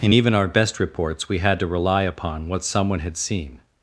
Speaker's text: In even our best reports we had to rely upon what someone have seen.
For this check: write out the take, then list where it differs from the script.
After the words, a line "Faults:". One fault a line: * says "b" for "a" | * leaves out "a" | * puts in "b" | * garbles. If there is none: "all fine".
In even our best reports we had to rely upon what someone had seen.
Faults:
* says "had" for "have"